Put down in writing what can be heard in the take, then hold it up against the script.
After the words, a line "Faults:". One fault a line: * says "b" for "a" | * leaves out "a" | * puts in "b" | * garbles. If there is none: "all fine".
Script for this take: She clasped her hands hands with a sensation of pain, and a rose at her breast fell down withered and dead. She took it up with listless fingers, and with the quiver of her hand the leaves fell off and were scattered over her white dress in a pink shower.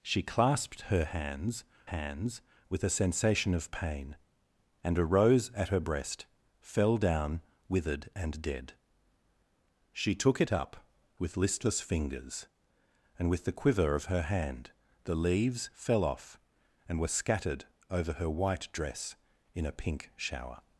She clasped her hands hands with a sensation of pain, and a rose at her breast fell down withered and dead. She took it up with listless fingers, and with the quiver of her hand the leaves fell off and were scattered over her white dress in a pink shower.
Faults:
all fine